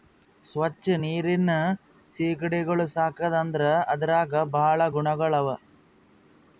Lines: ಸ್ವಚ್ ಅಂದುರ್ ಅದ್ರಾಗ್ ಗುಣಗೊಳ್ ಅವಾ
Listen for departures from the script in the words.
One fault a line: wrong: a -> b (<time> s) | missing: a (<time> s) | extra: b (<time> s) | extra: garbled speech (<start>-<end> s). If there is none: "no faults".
extra: ನೀರಿನ್ ಸೀಗಡಿಗೊಳ್ ಸಾಕದ್ (1.0 s)
extra: ಭಾಳ (4.5 s)